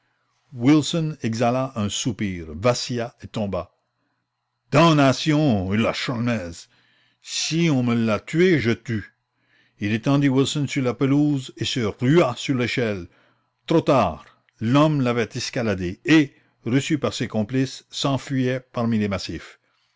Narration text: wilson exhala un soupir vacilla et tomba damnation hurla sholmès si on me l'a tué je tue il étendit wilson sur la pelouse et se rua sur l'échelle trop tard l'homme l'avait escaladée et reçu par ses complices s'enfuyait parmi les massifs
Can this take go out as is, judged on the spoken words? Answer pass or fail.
pass